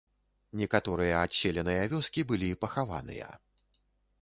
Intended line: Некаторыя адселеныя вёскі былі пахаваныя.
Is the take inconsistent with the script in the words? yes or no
no